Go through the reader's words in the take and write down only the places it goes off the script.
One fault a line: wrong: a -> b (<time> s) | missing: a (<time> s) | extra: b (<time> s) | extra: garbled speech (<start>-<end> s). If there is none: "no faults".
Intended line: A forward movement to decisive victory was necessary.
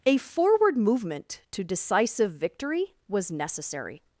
no faults